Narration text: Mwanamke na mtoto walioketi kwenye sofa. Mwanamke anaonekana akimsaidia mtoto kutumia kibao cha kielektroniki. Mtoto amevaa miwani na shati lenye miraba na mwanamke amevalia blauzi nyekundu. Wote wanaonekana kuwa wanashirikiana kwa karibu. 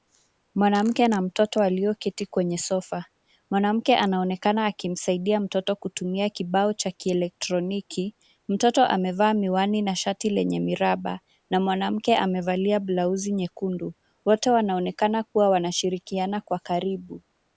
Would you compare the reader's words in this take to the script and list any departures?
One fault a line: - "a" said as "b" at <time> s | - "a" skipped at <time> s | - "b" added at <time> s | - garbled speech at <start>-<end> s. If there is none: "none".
none